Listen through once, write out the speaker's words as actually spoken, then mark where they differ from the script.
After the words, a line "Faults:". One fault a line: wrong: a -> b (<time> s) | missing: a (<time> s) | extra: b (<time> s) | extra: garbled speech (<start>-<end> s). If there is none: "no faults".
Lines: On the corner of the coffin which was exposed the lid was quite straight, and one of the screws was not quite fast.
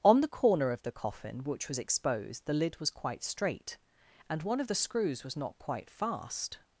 On the corner of the coffin which was exposed the lid was quite straight, and one of the screws was not quite fast.
Faults:
no faults